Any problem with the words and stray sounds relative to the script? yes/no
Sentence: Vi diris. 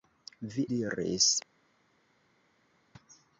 no